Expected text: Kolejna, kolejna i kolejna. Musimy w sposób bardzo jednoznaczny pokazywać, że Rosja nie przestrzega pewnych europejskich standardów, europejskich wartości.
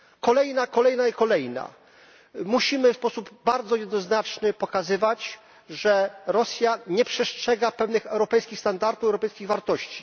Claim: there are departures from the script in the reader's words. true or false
false